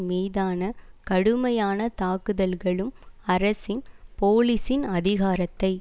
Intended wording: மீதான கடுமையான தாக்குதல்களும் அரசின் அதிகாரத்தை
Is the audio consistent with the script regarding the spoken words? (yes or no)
no